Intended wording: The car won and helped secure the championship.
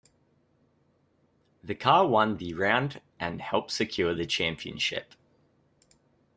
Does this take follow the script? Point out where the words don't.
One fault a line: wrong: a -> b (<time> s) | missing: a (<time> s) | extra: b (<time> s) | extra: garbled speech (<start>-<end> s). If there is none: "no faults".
extra: the round (2.4 s)